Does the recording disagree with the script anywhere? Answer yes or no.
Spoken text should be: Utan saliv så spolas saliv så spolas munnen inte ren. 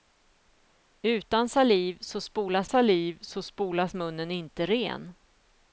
no